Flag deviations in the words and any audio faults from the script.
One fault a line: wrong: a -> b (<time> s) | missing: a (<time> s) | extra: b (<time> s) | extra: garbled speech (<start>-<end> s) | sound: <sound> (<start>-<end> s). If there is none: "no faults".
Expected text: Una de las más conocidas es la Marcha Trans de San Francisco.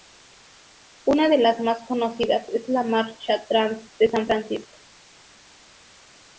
no faults